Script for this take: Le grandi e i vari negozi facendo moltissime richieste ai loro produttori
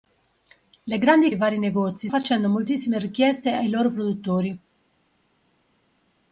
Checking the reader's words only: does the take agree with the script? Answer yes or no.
yes